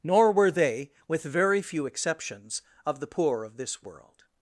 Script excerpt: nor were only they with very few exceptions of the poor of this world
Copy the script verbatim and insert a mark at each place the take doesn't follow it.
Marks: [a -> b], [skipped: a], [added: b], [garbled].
nor were [skipped: only] they with very few exceptions of the poor of this world